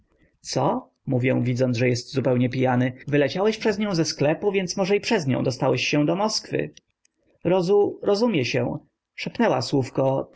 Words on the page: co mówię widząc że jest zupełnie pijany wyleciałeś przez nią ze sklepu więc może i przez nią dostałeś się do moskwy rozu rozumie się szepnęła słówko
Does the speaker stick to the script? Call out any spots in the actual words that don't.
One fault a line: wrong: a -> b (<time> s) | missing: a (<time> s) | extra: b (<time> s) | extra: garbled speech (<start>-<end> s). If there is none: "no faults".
no faults